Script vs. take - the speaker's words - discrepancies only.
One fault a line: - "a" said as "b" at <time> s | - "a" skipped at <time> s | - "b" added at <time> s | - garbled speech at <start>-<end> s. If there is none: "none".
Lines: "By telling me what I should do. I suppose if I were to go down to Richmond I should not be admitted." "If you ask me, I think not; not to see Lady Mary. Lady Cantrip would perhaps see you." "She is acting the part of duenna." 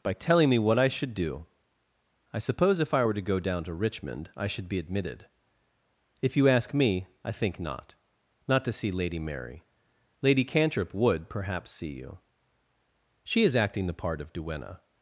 - "not" skipped at 4.7 s